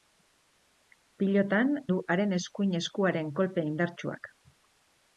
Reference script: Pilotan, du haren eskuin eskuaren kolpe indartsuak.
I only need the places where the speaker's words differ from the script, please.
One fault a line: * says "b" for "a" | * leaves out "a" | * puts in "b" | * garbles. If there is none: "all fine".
all fine